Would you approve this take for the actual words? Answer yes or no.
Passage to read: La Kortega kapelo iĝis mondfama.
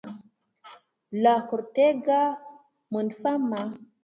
no